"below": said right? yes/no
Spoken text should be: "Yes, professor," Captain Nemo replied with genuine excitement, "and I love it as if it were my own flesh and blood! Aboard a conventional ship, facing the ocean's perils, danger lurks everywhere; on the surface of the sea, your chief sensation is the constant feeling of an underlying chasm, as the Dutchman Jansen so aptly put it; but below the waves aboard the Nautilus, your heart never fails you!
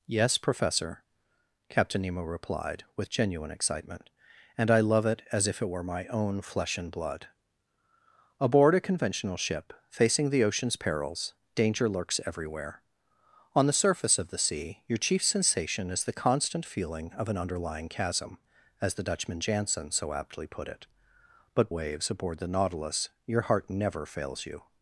no